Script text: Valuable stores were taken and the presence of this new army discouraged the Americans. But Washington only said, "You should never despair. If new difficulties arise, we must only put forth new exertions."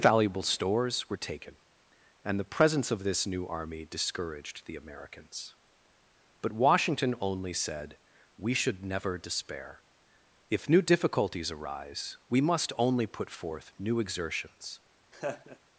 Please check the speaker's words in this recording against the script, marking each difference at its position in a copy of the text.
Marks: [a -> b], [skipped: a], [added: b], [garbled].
Valuable stores were taken and the presence of this new army discouraged the Americans. But Washington only said, ["You -> We] should never despair. If new difficulties arise, we must only put forth new exertions."